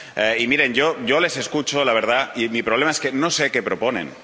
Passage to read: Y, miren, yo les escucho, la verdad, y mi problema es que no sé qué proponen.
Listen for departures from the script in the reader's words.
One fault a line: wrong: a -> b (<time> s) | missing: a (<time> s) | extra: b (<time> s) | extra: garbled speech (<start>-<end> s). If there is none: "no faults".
no faults